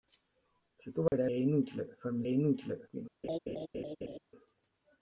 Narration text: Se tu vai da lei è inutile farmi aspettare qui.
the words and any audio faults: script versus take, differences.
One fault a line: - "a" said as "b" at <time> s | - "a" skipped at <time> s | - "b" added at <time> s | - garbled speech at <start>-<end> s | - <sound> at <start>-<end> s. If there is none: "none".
- dropout at 1.1-1.1 s
- "lei" skipped at 1.3 s
- "aspettare" said as "inutile" at 2.3 s
- laugh at 3.2-4.2 s